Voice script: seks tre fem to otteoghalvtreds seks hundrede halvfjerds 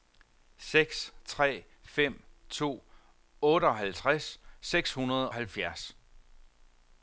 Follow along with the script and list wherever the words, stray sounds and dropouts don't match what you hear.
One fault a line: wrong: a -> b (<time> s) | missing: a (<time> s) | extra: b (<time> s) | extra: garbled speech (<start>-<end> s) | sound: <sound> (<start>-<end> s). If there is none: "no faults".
no faults